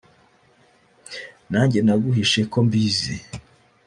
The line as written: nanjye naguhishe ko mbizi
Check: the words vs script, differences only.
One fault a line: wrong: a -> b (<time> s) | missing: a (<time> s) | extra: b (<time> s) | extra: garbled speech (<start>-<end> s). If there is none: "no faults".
no faults